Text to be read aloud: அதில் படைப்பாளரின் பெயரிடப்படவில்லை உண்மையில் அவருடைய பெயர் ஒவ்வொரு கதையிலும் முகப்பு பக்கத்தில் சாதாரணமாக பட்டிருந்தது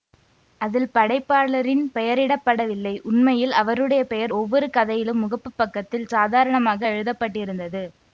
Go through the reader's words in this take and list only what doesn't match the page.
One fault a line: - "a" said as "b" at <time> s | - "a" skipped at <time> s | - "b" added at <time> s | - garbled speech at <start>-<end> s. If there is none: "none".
- "எழுத" added at 6.9 s